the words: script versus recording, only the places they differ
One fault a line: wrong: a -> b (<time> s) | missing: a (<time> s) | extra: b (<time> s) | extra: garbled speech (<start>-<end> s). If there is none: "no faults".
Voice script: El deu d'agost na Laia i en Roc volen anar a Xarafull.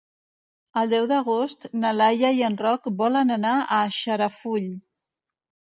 no faults